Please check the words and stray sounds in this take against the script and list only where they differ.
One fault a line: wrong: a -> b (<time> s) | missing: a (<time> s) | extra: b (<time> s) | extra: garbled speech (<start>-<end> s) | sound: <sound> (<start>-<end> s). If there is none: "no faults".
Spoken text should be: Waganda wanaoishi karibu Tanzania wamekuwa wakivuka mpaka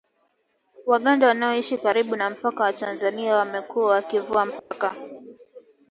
extra: na mpaka wa (2.1 s)
sound: dropout (4.6-4.7 s)